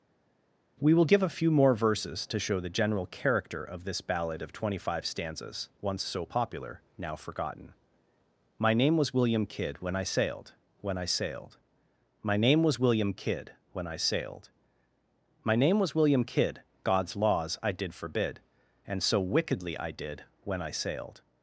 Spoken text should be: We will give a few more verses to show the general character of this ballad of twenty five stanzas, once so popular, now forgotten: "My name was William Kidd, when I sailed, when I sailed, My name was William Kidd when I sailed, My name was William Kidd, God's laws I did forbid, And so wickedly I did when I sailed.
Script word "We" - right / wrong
right